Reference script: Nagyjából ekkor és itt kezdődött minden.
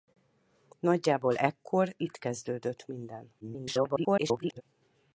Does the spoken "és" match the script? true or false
false